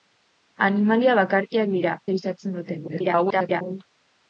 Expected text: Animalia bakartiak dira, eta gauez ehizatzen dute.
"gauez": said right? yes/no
no